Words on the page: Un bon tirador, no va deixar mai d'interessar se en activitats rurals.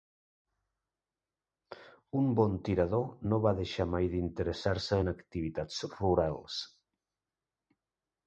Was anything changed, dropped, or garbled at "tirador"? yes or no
no